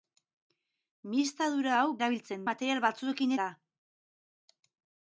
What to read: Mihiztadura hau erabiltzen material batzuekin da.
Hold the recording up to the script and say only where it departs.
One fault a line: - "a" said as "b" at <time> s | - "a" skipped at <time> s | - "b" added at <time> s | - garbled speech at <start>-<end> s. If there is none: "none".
none